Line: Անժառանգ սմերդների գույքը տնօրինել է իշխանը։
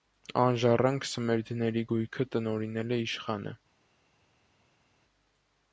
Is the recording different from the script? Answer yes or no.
no